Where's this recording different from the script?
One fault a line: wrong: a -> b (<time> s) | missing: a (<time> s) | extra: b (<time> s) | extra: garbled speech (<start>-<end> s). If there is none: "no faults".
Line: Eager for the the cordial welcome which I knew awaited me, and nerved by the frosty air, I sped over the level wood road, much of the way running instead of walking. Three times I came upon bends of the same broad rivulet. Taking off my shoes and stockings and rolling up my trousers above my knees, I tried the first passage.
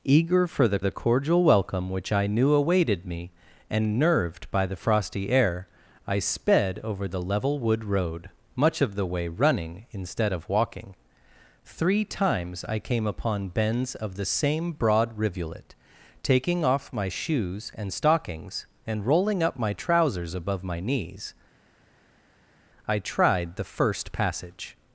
no faults